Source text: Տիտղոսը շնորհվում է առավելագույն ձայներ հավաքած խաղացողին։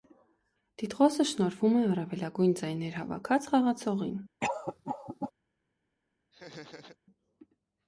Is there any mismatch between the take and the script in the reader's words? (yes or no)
no